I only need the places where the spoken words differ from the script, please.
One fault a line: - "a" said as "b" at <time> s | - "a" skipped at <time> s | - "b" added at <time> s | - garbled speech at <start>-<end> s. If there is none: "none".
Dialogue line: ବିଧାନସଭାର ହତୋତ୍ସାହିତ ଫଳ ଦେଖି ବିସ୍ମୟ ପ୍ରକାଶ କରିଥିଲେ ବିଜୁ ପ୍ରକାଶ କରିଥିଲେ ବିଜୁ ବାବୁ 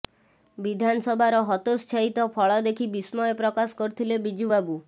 - "ପ୍ରକାଶ କରିଥିଲେ ବିଜୁ" skipped at 4.5 s